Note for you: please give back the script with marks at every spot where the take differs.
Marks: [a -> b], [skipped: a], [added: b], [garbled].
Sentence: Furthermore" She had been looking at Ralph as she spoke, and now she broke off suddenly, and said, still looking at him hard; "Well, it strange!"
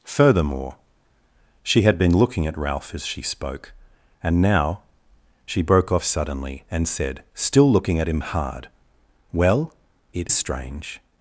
Furthermore" She had been looking at Ralph as she spoke, and now she broke off suddenly, and said, still looking at him hard; "Well, it strange!"